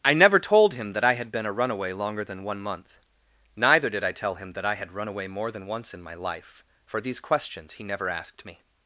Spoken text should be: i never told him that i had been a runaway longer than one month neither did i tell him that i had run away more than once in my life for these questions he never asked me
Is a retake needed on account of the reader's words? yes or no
no